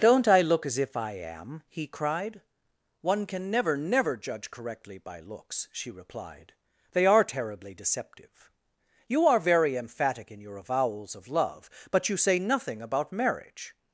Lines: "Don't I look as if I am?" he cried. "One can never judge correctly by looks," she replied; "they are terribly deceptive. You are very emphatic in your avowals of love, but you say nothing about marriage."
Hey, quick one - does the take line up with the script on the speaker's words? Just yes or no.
no